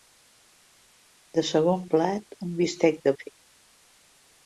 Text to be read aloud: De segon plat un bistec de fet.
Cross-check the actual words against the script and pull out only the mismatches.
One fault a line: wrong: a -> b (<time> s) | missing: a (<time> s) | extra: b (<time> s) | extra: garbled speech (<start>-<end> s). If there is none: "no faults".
no faults